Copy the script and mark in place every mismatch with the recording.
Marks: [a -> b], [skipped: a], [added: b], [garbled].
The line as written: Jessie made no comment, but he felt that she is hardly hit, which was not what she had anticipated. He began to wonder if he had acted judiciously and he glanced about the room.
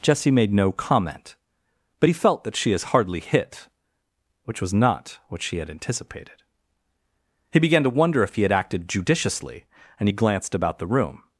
Jessie made no comment, but he felt that she is hardly hit, which was not what she had anticipated. He began to wonder if he had acted judiciously and he glanced about the room.